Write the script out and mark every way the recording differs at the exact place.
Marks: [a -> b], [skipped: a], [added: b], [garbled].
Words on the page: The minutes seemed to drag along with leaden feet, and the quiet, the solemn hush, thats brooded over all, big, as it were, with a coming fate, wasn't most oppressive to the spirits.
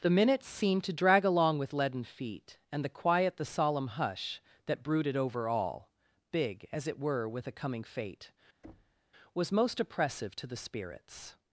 The minutes seemed to drag along with leaden feet, and the quiet, the solemn hush, [thats -> that] brooded over all, big, as it were, with a coming fate, [wasn't -> was] most oppressive to the spirits.